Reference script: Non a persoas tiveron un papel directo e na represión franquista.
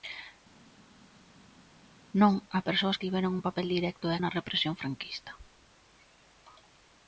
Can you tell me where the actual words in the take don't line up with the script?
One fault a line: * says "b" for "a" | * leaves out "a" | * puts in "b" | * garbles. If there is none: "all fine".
all fine